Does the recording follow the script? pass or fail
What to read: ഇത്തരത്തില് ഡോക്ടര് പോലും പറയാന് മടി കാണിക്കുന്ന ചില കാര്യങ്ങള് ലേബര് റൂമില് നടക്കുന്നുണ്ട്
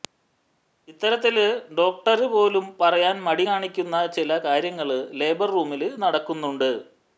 pass